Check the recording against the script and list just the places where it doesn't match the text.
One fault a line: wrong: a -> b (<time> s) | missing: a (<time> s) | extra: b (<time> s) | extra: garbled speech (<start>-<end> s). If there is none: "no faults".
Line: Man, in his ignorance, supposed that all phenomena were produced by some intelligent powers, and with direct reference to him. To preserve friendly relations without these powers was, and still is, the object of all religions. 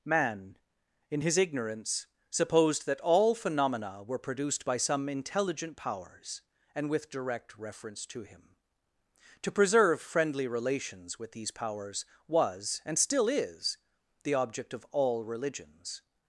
wrong: without -> with (11.2 s)